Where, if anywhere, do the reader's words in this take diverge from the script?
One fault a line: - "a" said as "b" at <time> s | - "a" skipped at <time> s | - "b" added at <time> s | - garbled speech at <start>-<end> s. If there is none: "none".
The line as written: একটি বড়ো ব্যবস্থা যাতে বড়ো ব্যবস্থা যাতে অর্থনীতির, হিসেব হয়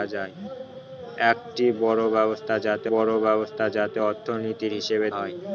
none